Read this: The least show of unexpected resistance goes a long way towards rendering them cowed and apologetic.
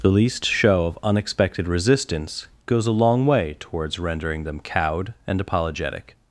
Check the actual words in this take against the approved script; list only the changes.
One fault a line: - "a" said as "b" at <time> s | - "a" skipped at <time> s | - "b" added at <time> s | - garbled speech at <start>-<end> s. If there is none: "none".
none